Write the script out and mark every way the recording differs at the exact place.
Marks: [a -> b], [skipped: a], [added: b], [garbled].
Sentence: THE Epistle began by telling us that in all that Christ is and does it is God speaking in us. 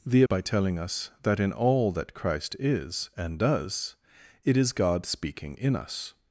THE [skipped: Epistle began] by telling us that in all that Christ is and does it is God speaking in us.